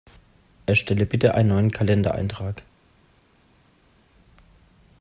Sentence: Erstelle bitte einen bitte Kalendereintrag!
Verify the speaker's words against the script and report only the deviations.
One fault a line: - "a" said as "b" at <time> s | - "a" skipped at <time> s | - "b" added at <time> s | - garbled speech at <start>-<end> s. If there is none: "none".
- "bitte" said as "neuen" at 1.5 s